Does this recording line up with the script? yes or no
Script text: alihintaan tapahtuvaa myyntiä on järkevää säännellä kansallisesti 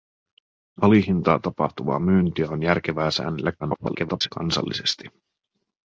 no